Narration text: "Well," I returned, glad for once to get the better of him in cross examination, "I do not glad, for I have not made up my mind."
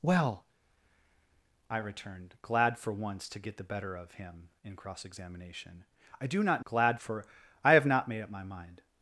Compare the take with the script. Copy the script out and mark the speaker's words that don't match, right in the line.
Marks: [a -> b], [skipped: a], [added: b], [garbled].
"Well," I returned, glad for once to get the better of him in cross examination, "I do not glad, for I have not made up my mind."